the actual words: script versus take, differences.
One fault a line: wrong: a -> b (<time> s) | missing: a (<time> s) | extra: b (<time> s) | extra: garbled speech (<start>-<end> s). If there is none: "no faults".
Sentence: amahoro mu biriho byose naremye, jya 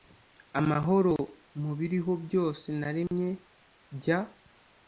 no faults